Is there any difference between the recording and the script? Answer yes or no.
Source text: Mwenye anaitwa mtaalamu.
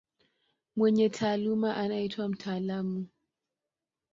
yes